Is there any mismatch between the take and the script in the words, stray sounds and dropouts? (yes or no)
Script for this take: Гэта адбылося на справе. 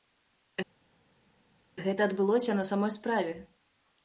yes